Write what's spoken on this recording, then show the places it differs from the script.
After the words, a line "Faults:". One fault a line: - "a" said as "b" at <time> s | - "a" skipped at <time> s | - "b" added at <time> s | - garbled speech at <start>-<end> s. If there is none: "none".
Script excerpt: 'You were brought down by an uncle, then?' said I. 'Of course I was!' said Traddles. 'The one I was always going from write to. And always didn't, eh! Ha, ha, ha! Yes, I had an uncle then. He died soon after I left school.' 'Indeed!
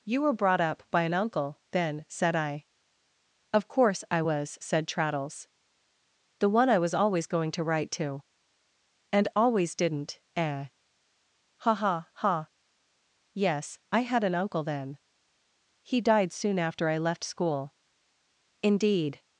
'You were brought up by an uncle, then?' said I. 'Of course I was!' said Traddles. 'The one I was always going to write to. And always didn't, eh! Ha, ha, ha! Yes, I had an uncle then. He died soon after I left school.' 'Indeed!
Faults:
- "down" said as "up" at 0.6 s
- "from" said as "to" at 7.5 s